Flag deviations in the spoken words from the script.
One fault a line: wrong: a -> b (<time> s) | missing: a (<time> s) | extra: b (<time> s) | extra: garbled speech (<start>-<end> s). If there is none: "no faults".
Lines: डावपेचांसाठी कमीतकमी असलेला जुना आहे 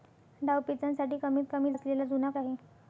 no faults